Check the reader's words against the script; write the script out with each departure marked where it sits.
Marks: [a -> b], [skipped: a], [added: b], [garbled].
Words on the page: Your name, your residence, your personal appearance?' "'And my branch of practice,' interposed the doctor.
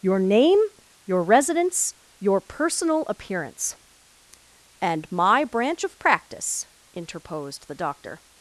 Your name, your residence, your personal appearance?' "'And my branch of practice,' interposed the doctor.